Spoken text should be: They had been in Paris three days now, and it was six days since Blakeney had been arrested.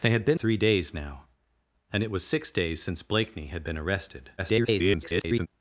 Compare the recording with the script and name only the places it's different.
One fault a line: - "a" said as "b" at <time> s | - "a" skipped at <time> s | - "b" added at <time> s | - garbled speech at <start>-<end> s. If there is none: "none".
- "in Paris" skipped at 0.4 s
- garbled speech at 4.4-5.5 s